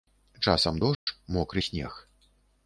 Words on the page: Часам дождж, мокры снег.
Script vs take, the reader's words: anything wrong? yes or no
no